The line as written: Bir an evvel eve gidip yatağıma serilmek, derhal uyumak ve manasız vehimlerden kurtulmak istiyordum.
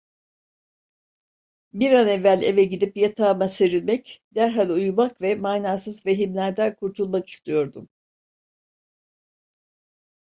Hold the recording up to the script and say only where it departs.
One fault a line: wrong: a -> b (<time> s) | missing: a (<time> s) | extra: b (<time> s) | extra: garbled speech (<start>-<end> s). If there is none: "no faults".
no faults